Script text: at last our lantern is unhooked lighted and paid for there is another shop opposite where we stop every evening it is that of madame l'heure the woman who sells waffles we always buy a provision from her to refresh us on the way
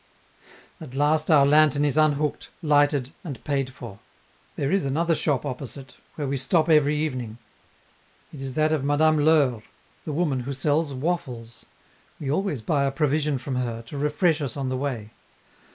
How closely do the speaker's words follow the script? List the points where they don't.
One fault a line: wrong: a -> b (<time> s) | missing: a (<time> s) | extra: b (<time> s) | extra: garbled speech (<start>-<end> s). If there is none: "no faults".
no faults